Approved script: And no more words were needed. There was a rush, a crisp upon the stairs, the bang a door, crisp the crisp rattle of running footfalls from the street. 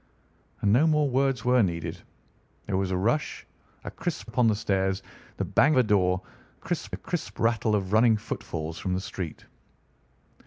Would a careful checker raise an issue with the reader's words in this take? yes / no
no